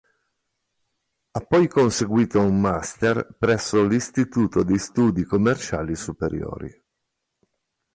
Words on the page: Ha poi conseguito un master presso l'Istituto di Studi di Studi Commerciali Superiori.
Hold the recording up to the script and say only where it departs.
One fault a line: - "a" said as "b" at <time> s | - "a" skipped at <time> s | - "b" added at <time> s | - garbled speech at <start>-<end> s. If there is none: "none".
- "di Studi" skipped at 5.2 s